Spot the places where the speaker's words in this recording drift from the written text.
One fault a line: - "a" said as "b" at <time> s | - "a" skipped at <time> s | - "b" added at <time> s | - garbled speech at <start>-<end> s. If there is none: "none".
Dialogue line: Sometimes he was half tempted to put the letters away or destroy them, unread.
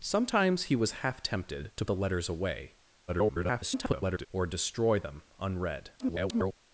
- "put" skipped at 1.9 s
- garbled speech at 3.1-4.3 s
- garbled speech at 6.0-6.6 s